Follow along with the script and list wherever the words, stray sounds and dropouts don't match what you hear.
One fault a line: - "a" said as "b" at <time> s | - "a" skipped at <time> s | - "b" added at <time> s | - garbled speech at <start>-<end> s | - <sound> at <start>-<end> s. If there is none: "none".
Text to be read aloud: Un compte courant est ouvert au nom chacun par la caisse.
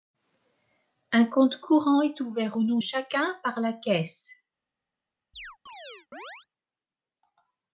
- chirp at 5.3-6.5 s